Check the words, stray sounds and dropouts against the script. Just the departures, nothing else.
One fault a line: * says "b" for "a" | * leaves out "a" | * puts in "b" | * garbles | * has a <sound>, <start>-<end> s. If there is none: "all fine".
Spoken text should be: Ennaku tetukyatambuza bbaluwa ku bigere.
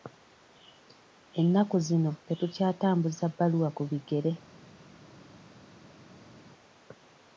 * puts in "zino"